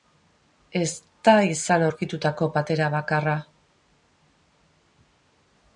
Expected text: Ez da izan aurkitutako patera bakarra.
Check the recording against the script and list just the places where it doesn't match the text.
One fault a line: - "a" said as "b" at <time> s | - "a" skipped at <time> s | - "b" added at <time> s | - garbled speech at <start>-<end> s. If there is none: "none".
none